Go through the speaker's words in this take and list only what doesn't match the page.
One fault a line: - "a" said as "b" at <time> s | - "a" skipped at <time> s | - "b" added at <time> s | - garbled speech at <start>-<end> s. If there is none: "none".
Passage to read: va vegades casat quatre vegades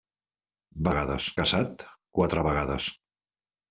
none